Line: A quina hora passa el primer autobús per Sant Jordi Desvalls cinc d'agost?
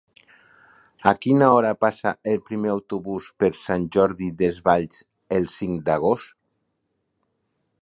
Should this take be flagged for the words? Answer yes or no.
yes